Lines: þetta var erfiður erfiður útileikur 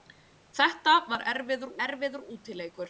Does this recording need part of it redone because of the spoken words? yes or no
no